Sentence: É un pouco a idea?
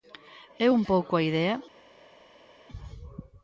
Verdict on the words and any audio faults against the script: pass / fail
pass